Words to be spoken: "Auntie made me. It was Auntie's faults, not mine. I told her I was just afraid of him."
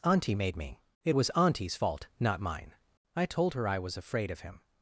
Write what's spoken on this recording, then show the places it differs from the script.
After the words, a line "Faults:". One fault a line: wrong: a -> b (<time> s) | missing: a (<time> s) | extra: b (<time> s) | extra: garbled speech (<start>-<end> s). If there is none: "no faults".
"Auntie made me. It was Auntie's fault, not mine. I told her I was afraid of him."
Faults:
wrong: faults -> fault (1.7 s)
missing: just (4.0 s)